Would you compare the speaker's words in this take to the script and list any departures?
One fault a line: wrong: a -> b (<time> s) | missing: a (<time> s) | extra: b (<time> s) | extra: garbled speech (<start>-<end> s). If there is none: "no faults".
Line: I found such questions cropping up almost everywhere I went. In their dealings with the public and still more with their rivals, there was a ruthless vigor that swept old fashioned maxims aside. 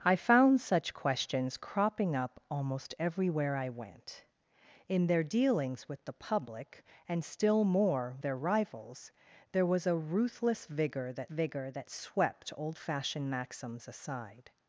missing: with (8.2 s)
extra: vigor that (11.3 s)